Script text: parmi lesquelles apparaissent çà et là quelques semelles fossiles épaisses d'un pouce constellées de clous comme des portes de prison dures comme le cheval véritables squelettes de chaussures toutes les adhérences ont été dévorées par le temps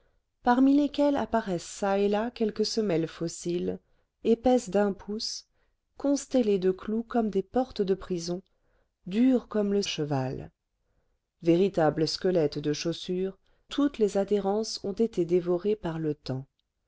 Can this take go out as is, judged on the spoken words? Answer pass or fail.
pass